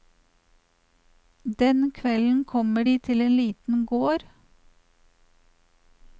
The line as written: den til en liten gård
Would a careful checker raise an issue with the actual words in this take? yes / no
yes